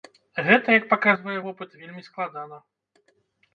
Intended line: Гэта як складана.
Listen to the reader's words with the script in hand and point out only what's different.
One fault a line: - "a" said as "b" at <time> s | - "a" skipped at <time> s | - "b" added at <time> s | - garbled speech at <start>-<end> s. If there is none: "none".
- "паказвае вопыт вельмі" added at 0.9 s